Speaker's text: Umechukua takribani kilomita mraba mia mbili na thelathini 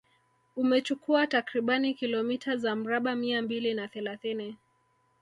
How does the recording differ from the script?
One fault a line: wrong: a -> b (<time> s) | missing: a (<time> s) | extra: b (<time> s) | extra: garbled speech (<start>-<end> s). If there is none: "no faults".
extra: za (2.6 s)